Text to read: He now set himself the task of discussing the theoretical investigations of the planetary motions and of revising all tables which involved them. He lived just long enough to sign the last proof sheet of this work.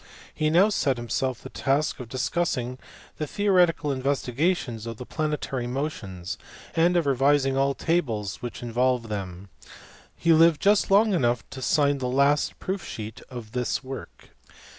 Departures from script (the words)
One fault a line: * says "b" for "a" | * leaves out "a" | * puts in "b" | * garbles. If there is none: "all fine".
all fine